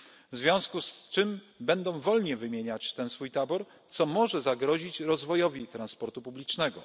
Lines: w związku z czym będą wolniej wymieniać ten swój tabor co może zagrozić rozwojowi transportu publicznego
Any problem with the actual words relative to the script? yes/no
no